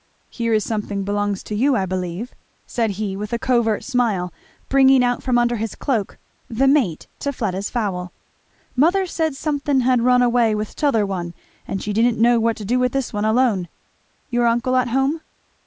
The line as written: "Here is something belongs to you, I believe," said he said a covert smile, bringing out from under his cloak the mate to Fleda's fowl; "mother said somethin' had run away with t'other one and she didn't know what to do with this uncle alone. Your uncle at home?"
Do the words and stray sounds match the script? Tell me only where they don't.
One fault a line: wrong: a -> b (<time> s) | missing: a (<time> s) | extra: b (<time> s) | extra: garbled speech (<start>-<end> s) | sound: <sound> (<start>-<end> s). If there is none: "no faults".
wrong: said -> with (3.1 s)
wrong: uncle -> one (13.1 s)